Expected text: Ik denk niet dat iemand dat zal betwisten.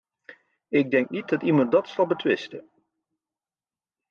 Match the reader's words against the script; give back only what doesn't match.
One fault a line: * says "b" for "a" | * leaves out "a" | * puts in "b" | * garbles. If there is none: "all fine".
all fine